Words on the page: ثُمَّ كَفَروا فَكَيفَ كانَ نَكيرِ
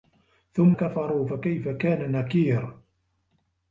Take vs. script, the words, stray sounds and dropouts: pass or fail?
pass